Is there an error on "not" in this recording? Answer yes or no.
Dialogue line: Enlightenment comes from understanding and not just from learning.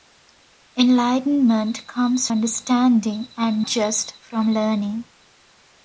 yes